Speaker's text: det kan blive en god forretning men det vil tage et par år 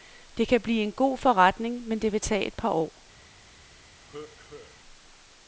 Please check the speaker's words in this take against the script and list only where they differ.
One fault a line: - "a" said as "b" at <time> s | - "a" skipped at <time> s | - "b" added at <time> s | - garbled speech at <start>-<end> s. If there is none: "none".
none